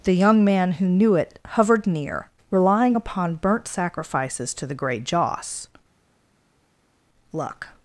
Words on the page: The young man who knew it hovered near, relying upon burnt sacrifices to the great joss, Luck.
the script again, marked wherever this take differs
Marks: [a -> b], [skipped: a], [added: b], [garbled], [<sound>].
The young man who knew it hovered near, relying upon burnt sacrifices to the great joss, Luck.